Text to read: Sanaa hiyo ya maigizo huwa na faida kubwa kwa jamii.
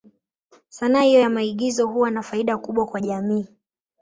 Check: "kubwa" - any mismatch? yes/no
no